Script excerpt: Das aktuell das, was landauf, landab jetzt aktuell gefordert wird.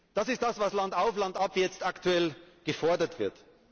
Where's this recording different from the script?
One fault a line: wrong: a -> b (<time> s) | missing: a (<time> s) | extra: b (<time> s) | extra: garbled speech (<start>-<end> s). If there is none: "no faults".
wrong: aktuell -> ist (0.3 s)